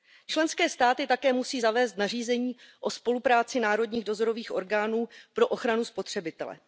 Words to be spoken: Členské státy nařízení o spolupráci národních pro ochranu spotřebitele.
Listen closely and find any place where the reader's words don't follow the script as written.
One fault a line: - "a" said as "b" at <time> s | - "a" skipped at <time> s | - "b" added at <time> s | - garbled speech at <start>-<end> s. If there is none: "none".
- "také musí zavést" added at 1.1 s
- "dozorových orgánů" added at 4.0 s